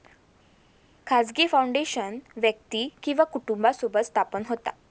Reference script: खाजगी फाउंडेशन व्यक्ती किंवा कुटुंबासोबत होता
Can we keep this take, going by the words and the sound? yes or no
no